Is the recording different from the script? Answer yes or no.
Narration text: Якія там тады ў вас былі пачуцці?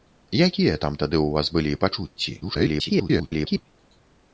yes